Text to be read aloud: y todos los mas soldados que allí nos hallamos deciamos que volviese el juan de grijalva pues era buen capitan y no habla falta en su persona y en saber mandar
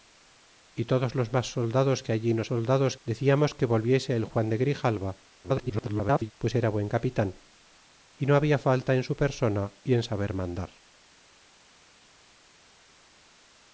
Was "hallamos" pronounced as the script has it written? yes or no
no